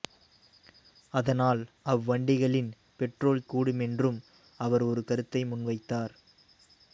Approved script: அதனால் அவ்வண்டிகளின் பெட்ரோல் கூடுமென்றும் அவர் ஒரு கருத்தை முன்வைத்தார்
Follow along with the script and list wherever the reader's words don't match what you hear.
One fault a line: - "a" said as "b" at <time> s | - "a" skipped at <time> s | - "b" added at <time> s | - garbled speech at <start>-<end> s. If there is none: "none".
none